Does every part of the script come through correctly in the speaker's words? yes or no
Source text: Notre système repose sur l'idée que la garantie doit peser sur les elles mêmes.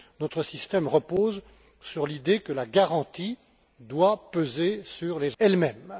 yes